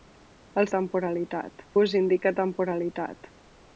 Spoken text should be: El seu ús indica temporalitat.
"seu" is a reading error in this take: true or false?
true